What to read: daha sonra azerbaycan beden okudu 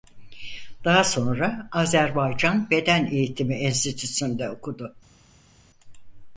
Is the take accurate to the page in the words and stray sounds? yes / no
no